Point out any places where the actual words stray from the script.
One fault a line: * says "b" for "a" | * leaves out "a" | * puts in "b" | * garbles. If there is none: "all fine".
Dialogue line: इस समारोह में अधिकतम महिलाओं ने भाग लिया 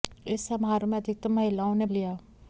* leaves out "भाग"